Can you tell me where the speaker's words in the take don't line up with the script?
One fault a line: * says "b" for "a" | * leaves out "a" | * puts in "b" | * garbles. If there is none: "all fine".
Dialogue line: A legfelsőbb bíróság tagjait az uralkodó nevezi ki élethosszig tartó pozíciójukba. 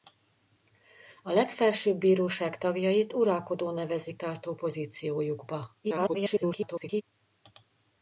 * leaves out "az"
* leaves out "ki élethosszig"
* garbles